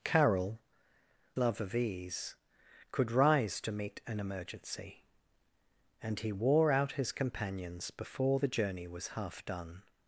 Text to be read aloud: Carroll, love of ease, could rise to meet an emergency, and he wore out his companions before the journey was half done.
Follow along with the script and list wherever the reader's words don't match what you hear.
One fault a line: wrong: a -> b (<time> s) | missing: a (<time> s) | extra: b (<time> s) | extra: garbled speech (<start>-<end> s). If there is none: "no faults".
no faults